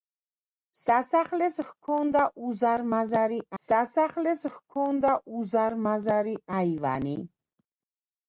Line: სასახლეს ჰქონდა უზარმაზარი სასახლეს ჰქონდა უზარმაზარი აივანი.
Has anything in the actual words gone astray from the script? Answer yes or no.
no